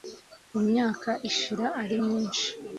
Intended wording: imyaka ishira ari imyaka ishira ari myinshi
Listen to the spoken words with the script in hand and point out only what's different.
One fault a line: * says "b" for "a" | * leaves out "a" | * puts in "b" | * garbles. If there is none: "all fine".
* leaves out "imyaka ishira ari"